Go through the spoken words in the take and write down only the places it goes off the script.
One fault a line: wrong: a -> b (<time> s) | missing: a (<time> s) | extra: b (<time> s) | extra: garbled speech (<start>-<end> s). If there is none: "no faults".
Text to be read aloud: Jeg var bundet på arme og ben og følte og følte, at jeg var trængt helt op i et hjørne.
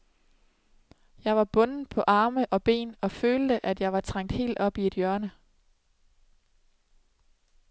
missing: og følte (3.6 s)